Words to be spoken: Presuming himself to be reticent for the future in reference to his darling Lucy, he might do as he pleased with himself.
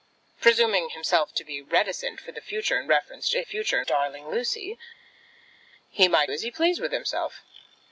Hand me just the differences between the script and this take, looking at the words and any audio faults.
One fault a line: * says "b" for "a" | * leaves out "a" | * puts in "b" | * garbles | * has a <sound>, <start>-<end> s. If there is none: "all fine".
* says "future" for "his"
* leaves out "do"